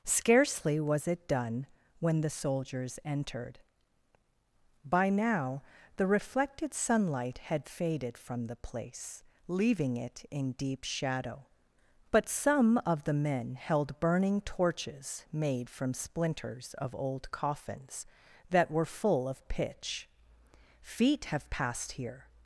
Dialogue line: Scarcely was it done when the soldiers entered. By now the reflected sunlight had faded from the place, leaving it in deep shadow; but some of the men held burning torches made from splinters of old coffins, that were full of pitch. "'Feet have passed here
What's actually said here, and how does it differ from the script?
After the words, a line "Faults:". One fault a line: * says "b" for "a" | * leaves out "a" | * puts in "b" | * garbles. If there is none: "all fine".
Scarcely was it done when the soldiers entered. By now the reflected sunlight had faded from the place, leaving it in deep shadow; but some of the men held burning torches made from splinters of old coffins, that were full of pitch. "'Feet have passed here
Faults:
all fine